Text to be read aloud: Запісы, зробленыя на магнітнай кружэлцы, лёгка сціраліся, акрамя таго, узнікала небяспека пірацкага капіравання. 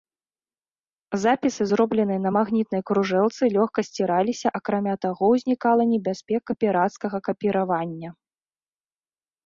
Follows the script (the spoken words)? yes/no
yes